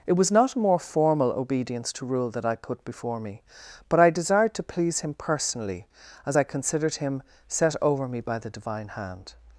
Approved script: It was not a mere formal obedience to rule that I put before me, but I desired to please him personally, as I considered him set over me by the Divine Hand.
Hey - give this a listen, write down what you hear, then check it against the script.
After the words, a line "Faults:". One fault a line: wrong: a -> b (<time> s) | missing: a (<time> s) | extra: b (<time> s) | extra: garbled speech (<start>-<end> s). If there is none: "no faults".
It was not a more formal obedience to rule that I put before me, but I desired to please him personally, as I considered him set over me by the Divine Hand.
Faults:
wrong: mere -> more (0.6 s)